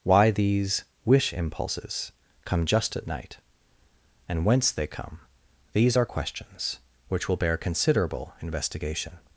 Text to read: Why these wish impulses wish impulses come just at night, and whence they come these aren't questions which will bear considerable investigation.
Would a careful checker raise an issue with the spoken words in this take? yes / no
yes